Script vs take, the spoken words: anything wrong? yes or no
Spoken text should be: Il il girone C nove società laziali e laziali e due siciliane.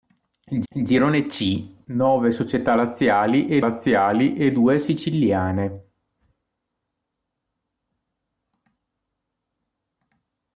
no